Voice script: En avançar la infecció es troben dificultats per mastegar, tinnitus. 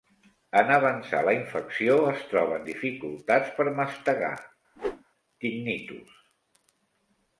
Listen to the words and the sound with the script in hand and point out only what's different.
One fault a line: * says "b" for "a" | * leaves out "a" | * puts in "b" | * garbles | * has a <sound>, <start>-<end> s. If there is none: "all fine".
* has a whoosh, 4.8-5.0 s